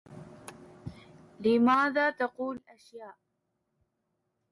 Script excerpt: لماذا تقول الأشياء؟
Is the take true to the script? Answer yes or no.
yes